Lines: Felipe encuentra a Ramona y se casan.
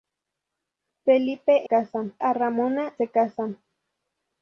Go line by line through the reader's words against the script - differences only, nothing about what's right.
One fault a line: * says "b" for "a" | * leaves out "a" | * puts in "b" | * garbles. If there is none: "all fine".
* says "casan" for "encuentra"
* leaves out "y"